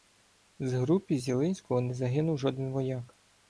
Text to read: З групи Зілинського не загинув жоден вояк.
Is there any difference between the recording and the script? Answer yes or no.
no